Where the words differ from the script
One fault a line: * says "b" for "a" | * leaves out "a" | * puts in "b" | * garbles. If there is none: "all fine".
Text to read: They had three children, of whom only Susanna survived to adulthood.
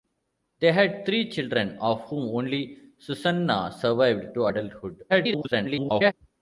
* garbles